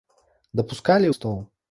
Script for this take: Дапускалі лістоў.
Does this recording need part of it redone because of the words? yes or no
no